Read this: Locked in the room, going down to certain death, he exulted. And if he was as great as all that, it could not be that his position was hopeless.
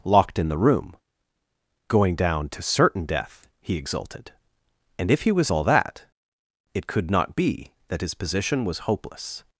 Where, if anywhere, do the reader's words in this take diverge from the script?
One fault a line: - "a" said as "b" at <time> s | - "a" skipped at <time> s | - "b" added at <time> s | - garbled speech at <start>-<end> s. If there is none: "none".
- "as great as" skipped at 5.5 s